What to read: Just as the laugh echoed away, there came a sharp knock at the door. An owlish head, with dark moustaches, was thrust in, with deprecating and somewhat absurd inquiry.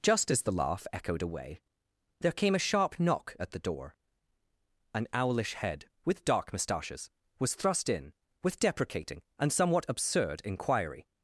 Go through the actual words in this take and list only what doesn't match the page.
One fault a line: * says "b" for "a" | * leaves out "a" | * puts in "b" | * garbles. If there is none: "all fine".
all fine